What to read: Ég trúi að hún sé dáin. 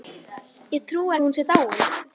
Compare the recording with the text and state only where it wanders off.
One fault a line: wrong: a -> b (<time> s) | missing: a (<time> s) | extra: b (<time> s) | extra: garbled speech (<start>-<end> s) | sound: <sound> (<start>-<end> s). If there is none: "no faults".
no faults